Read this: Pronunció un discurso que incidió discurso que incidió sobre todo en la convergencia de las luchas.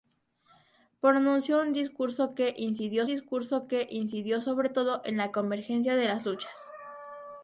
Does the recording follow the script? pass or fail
pass